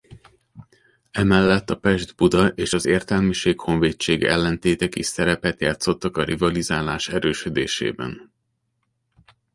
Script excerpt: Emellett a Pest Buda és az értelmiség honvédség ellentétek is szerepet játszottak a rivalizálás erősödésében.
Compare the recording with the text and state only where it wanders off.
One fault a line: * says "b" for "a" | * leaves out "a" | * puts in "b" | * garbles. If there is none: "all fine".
all fine